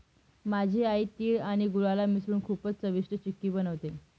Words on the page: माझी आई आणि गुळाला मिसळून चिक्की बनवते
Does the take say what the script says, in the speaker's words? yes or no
no